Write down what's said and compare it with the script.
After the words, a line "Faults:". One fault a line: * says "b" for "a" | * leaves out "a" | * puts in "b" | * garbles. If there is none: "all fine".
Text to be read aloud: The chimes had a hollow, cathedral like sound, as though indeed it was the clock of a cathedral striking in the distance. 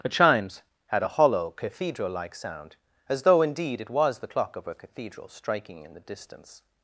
The chimes had a hollow, cathedral like sound, as though indeed it was the clock of a cathedral striking in the distance.
Faults:
all fine